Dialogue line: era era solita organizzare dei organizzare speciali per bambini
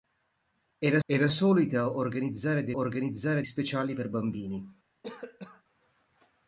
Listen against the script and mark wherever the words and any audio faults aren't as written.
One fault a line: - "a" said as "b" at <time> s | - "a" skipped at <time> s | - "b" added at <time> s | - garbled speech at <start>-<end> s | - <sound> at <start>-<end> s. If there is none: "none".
- cough at 5.0-5.6 s